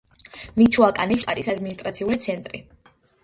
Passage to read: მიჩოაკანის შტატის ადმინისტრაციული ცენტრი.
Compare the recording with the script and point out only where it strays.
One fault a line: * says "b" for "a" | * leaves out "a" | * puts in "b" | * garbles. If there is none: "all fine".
all fine